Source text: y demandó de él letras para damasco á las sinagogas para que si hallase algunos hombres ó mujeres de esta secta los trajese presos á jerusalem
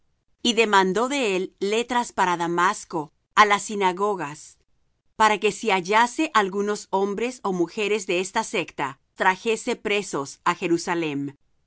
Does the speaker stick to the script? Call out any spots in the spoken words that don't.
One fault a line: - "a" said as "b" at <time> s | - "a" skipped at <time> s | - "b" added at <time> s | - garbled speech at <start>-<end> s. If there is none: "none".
- "los" skipped at 9.0 s